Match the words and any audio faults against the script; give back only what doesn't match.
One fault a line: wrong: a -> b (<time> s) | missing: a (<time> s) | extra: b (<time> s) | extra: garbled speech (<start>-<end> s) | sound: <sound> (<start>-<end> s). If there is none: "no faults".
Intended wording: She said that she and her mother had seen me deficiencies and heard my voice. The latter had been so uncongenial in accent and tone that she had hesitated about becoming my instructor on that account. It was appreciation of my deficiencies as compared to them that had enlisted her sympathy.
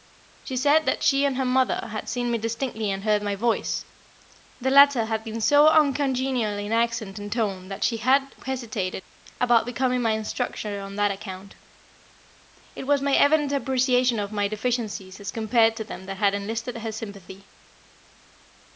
wrong: deficiencies -> distinctly (2.4 s)
extra: my evident (13.0 s)